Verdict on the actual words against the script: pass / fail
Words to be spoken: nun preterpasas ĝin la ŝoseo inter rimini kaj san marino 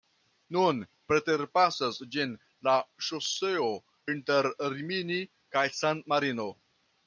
pass